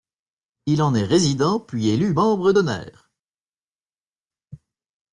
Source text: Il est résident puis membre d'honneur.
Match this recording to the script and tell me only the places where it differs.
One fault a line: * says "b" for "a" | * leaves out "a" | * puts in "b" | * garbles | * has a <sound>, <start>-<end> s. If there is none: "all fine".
* puts in "en"
* puts in "élu"